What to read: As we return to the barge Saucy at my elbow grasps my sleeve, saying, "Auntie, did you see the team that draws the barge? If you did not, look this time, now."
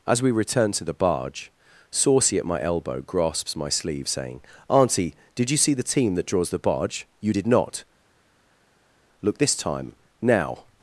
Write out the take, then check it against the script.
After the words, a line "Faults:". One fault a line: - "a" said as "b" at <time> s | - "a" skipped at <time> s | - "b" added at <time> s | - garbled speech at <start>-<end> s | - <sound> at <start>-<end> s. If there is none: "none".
As we return to the barge Saucy at my elbow grasps my sleeve, saying, "Auntie, did you see the team that draws the barge? you did not, look this time, now."
Faults:
- "If" skipped at 7.1 s